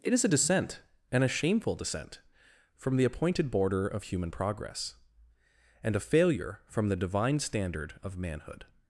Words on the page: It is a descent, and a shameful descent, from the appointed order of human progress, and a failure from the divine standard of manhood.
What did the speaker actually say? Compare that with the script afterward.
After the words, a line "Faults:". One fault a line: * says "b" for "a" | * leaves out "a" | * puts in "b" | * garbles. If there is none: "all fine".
It is a descent, and a shameful descent, from the appointed border of human progress, and a failure from the divine standard of manhood.
Faults:
* says "border" for "order"